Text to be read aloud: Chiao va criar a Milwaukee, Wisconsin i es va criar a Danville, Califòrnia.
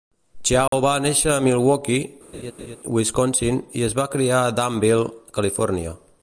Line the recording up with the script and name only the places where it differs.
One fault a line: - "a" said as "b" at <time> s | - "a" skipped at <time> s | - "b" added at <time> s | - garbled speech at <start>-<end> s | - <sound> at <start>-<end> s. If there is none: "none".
- dropout at 0.7-0.7 s
- "criar" said as "néixer" at 1.0 s
- laugh at 2.3-2.8 s